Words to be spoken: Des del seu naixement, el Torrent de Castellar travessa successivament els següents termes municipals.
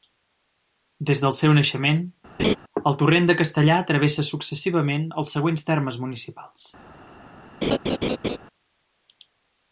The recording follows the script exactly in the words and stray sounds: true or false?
false